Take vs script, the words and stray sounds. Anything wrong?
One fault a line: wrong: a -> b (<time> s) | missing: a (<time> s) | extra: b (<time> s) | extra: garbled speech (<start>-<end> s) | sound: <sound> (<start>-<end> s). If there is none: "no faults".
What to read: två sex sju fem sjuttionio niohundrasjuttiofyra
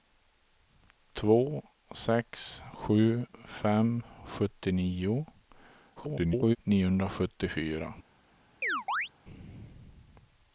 extra: garbled speech (6.0-6.6 s)
sound: chirp (8.6-9.1 s)